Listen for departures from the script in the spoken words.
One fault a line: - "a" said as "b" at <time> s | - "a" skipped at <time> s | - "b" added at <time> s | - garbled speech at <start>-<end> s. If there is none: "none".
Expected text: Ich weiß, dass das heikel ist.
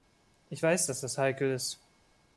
none